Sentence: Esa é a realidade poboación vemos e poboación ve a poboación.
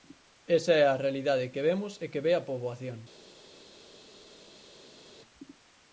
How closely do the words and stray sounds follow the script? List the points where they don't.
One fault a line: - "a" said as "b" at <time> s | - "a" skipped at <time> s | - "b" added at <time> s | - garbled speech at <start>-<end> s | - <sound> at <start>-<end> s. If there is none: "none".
- "poboación" said as "que" at 1.5 s
- "poboación" said as "que" at 2.1 s